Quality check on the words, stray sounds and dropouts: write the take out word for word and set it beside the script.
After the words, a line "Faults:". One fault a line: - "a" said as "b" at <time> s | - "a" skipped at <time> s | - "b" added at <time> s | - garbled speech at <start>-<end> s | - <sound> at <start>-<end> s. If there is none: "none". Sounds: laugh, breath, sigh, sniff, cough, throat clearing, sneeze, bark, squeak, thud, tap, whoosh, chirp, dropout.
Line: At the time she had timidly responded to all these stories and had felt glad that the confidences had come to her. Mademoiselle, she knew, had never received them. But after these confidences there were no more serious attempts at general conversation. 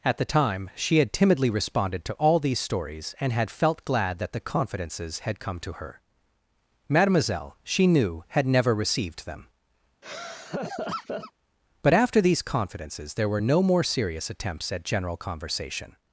At the time she had timidly responded to all these stories and had felt glad that the confidences had come to her. Mademoiselle, she knew, had never received them. But after these confidences there were no more serious attempts at general conversation.
Faults:
- laugh at 10.0-11.3 s